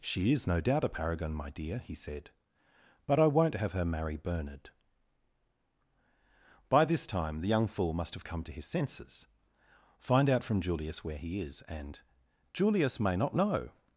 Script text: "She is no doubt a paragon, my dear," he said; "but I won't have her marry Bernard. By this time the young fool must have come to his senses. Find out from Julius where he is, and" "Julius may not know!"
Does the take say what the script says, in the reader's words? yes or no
yes